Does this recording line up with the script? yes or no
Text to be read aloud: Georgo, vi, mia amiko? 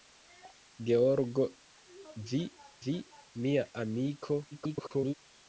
no